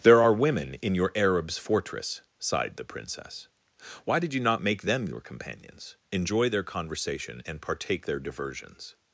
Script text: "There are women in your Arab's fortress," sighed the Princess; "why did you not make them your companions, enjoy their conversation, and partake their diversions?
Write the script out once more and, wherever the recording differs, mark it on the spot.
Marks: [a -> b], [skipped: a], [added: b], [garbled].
"There are women in your Arab's fortress," sighed the Princess; "why did you not make them your companions, enjoy their conversation, and partake their diversions?